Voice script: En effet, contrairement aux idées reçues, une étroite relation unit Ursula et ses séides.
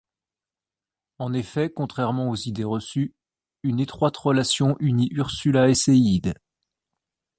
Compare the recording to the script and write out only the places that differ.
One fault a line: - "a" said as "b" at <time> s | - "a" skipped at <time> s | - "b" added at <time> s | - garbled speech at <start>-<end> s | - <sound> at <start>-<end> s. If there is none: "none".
- "ses" skipped at 5.7 s